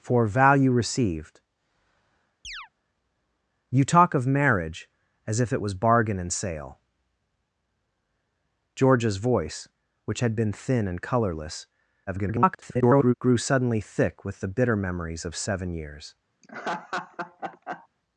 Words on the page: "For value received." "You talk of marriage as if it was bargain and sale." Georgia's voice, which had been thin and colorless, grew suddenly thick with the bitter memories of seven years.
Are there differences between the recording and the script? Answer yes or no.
yes